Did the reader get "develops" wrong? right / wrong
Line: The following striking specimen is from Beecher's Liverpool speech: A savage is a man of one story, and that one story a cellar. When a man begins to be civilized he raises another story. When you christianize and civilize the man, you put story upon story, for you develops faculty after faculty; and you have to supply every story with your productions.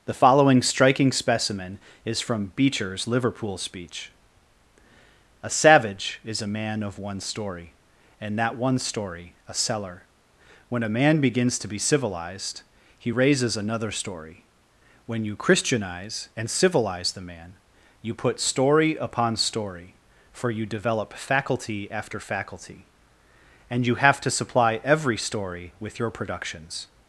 wrong